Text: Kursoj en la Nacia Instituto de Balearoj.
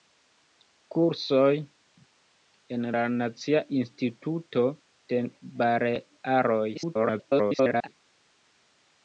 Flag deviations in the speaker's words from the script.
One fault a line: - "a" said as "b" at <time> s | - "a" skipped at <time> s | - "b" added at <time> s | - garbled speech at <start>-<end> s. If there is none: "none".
- garbled speech at 6.7-7.9 s